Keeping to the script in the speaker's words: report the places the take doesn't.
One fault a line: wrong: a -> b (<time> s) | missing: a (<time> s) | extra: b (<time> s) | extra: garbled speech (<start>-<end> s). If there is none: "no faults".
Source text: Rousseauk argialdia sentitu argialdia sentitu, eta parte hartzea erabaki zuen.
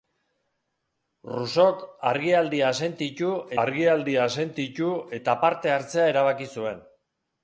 no faults